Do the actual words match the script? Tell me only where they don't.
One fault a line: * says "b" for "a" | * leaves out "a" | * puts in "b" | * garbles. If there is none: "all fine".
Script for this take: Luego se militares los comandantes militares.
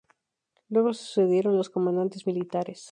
* says "sucedieron" for "militares"